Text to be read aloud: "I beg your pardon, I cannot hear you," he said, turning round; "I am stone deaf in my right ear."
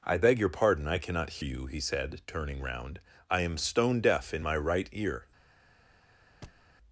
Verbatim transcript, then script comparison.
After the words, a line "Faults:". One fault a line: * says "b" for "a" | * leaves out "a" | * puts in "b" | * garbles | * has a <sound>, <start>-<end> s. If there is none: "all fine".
"I beg your pardon, I cannot you," he said, turning round; "I am stone deaf in my right ear."
Faults:
* leaves out "hear"
* has a thud, 6.4-6.7 s